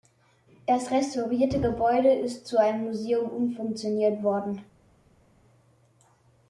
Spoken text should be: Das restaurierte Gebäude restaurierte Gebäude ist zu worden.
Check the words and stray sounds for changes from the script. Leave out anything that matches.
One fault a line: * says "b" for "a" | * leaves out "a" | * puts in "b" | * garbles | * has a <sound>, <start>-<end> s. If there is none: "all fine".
* says "ist zu einem Museum umfunktioniert" for "restaurierte Gebäude ist zu"